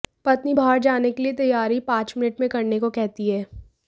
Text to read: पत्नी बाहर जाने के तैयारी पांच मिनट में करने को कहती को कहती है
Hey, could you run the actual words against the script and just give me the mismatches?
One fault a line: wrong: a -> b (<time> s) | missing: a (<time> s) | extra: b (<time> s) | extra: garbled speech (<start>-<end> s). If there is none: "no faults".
extra: लिए (1.2 s)
missing: को कहती (3.3 s)